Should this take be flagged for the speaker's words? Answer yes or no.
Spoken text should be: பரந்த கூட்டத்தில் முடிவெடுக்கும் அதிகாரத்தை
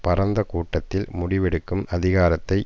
no